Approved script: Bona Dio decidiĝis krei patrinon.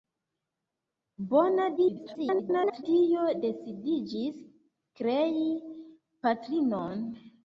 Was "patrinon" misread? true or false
false